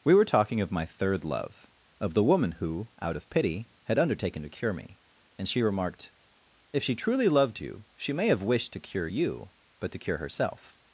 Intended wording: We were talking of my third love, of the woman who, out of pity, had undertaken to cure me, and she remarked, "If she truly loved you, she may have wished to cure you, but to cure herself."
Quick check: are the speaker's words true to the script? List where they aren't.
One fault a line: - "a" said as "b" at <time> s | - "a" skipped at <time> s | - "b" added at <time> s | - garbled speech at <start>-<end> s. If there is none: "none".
none